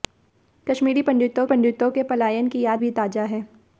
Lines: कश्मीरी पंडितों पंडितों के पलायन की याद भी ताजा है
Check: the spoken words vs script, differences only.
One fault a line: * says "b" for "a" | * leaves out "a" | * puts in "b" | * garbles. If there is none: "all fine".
all fine